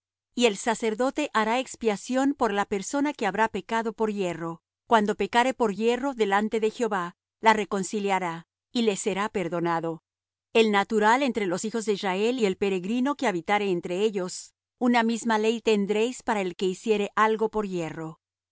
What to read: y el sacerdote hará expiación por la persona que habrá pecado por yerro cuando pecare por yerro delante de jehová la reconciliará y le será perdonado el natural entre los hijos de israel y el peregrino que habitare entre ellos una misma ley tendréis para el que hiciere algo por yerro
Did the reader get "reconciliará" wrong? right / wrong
right